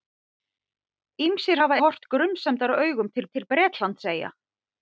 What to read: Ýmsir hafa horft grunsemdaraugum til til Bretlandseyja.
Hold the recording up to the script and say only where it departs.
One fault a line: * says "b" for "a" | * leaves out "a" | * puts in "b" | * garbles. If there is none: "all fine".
all fine